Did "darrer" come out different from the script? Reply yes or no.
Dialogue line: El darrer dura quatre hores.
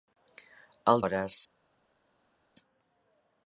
yes